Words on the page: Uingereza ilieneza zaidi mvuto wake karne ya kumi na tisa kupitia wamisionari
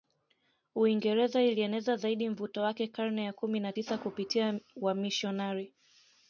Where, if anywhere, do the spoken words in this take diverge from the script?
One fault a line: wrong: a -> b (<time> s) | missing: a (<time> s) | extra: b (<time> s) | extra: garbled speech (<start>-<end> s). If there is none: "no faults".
no faults